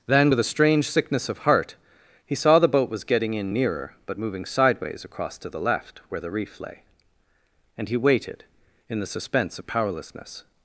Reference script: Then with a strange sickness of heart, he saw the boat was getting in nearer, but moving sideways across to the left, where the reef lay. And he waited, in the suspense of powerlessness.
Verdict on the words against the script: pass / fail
pass